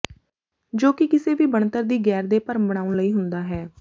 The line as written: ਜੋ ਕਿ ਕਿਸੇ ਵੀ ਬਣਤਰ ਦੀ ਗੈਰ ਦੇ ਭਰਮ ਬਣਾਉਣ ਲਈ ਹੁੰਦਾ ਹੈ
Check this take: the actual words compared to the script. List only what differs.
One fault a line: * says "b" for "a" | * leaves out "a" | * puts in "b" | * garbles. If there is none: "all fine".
all fine